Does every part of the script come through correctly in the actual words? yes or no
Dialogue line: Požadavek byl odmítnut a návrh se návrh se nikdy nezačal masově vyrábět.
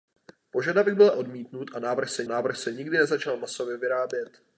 yes